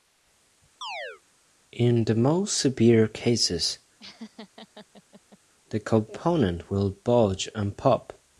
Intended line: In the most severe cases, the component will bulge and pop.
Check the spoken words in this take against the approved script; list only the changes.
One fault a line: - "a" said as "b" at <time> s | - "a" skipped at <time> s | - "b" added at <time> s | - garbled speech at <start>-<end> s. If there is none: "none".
none